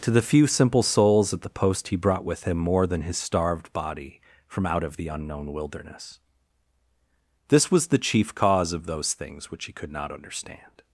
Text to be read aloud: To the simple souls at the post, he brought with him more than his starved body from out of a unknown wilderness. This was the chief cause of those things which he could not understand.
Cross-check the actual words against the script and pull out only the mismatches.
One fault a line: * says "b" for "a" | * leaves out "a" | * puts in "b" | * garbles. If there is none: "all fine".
* puts in "few"
* says "the" for "a"